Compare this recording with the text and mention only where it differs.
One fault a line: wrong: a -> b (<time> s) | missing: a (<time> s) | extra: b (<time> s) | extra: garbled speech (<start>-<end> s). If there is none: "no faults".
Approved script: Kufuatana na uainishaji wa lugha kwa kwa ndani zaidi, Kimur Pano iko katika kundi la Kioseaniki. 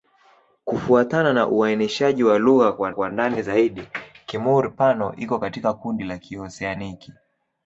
no faults